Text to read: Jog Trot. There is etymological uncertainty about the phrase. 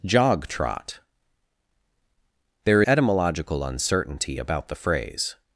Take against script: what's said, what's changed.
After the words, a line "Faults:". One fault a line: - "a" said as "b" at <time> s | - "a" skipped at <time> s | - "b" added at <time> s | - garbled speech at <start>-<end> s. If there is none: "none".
Jog Trot. There etymological uncertainty about the phrase.
Faults:
- "is" skipped at 2.8 s